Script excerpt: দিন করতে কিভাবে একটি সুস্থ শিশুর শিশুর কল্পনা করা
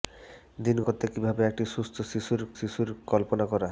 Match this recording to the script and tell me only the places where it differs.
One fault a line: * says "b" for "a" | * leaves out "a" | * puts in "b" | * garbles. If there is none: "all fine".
all fine